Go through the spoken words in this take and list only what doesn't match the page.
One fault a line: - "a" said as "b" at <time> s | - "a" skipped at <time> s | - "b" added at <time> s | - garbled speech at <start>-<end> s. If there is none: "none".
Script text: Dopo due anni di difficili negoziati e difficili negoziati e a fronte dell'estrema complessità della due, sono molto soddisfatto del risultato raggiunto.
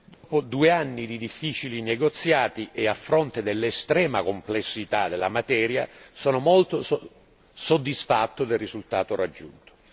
- "difficili negoziati e" skipped at 2.9 s
- "due" said as "materia" at 5.3 s